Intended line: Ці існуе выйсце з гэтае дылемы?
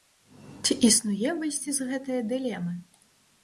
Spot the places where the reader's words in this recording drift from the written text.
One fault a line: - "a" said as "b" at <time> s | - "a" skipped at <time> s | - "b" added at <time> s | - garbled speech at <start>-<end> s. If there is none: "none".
none